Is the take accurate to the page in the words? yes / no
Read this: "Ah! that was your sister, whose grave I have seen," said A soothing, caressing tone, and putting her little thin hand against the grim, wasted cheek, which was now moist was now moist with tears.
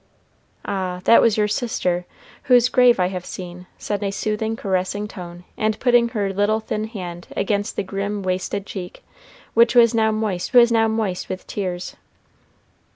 yes